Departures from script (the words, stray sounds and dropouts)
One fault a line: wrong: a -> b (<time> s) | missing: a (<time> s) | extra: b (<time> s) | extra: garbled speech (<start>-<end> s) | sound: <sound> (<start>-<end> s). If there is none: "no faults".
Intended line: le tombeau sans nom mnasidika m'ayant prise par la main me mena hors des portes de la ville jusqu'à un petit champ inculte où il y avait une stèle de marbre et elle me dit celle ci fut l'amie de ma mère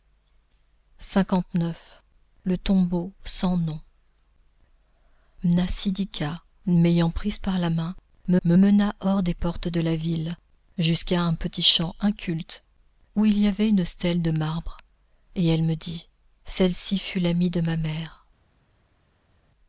extra: me (8.4 s)